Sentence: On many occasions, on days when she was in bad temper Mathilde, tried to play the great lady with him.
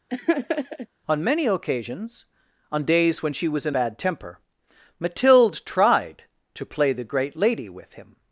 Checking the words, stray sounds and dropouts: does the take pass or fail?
fail